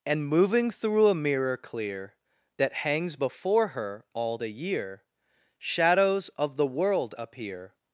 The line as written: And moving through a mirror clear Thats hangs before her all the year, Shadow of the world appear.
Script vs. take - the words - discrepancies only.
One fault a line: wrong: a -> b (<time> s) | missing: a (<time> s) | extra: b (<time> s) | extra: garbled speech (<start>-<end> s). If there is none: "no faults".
wrong: Thats -> That (2.6 s)
wrong: Shadow -> Shadows (5.6 s)